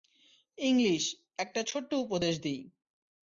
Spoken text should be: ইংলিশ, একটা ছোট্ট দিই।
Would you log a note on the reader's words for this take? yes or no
yes